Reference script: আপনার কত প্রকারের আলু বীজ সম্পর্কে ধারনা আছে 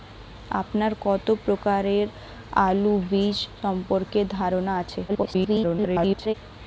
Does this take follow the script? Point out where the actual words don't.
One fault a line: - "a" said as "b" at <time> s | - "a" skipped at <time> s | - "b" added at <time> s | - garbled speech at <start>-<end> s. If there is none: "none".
- garbled speech at 5.1-6.3 s